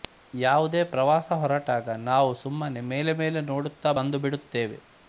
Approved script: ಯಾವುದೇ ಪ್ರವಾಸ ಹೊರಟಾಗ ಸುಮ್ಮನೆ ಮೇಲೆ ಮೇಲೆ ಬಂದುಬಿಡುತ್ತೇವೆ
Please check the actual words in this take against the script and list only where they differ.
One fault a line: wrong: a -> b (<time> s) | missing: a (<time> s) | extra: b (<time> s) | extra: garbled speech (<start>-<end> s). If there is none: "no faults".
extra: ನಾವು (2.1 s)
extra: ನೋಡುತ್ತಾ (3.5 s)